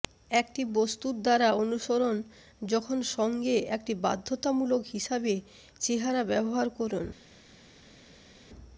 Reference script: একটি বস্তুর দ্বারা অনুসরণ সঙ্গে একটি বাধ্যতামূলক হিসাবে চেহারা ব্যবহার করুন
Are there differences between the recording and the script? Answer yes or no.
yes